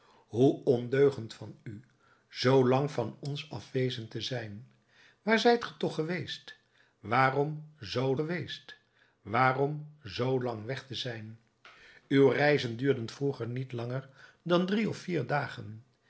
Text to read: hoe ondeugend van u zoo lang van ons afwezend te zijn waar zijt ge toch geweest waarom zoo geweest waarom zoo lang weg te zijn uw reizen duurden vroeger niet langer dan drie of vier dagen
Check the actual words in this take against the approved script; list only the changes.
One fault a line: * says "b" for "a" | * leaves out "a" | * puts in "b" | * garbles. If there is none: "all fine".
all fine